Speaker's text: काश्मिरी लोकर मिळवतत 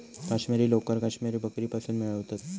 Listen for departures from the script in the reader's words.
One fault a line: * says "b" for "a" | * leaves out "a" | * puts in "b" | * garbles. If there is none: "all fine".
* puts in "काश्मिरी बकरीपासुन"